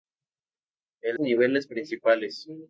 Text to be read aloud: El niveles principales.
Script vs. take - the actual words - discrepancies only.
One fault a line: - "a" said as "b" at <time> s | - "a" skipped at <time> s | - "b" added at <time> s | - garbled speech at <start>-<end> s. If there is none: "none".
none